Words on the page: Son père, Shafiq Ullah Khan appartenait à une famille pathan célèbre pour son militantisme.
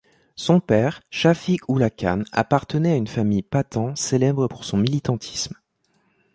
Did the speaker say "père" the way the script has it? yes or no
yes